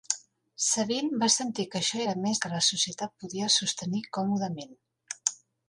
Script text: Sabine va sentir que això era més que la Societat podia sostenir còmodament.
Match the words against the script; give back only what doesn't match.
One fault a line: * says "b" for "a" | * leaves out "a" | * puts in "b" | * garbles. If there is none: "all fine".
all fine